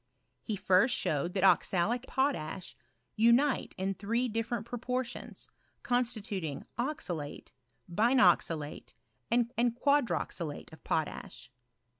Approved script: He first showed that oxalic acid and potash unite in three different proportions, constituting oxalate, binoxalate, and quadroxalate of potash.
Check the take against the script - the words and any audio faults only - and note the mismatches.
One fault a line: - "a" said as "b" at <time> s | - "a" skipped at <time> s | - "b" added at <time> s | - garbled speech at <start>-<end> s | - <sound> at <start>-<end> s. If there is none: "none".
- "acid and" skipped at 2.1 s
- "and" added at 9.6 s